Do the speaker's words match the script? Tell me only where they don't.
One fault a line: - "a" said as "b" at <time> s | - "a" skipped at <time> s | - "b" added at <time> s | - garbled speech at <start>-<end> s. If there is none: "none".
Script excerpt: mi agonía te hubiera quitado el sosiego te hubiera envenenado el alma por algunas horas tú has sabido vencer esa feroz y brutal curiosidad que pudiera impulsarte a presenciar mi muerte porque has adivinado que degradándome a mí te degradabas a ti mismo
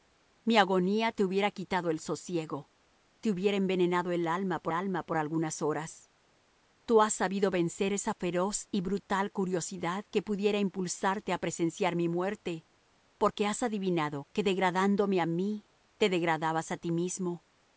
- "alma por" added at 4.7 s